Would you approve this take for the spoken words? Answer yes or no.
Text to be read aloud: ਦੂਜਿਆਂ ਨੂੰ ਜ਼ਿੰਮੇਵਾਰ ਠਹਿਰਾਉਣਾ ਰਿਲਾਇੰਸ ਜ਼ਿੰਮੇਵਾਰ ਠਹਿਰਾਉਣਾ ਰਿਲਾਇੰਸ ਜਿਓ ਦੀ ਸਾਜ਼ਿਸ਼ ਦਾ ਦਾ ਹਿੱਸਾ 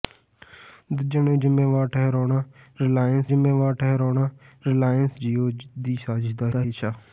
yes